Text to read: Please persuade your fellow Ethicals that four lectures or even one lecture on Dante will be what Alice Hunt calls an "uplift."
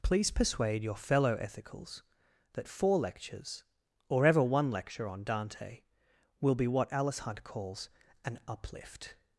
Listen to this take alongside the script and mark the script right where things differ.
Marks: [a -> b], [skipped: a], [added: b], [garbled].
Please persuade your fellow Ethicals that four lectures or [even -> ever] one lecture on Dante will be what Alice Hunt calls an "uplift."